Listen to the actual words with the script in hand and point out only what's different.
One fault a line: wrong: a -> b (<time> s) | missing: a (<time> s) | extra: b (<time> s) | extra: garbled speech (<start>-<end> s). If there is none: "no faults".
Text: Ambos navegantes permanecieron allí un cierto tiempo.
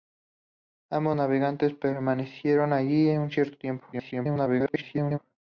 extra: garbled speech (3.9-5.2 s)